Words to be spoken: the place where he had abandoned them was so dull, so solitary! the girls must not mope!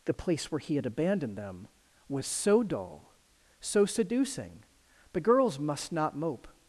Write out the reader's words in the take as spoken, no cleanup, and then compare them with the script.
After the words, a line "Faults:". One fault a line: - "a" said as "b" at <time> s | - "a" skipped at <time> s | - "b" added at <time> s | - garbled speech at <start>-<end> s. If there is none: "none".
the place where he had abandoned them was so dull, so seducing! the girls must not mope!
Faults:
- "solitary" said as "seducing" at 3.9 s